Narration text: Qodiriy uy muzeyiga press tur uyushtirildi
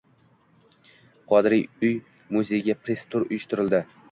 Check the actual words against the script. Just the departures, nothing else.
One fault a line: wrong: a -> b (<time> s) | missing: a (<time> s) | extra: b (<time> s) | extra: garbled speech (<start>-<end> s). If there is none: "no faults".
no faults